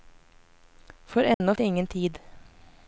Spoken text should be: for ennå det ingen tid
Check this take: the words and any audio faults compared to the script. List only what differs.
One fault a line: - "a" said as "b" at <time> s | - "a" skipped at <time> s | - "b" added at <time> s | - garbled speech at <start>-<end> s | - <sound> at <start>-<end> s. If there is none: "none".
- dropout at 1.3-1.4 s